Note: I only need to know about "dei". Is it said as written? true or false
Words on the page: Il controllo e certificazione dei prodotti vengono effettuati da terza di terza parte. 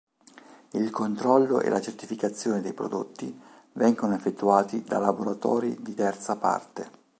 true